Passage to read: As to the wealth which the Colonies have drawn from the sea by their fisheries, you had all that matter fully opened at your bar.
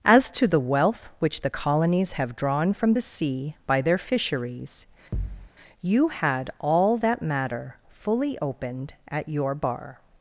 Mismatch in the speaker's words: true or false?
false